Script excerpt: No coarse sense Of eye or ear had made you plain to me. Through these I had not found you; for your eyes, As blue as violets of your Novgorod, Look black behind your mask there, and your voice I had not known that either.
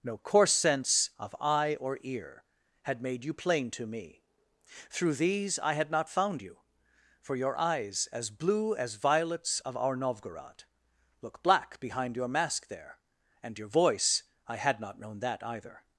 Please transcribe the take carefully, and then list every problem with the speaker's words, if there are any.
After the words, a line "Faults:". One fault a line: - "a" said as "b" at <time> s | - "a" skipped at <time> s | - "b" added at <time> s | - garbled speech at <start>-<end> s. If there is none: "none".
No coarse sense Of eye or ear had made you plain to me. Through these I had not found you; for your eyes, As blue as violets of our Novgorod, Look black behind your mask there, and your voice I had not known that either.
Faults:
- "your" said as "our" at 9.8 s